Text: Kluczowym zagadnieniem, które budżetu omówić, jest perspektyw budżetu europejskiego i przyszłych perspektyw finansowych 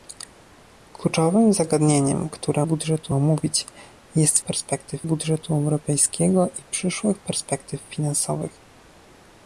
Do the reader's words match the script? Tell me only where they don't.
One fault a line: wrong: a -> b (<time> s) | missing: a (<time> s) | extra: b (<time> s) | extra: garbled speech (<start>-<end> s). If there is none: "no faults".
no faults